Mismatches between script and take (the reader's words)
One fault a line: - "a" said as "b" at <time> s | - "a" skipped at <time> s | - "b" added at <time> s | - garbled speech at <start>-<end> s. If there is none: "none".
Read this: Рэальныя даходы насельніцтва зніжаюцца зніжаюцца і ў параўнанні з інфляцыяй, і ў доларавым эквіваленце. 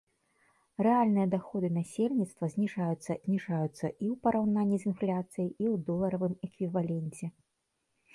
none